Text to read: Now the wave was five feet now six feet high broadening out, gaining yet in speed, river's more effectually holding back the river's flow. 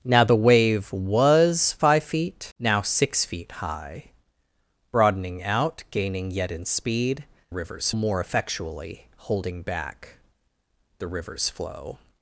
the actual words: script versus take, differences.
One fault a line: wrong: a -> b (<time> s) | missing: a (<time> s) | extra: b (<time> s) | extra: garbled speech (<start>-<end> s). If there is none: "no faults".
no faults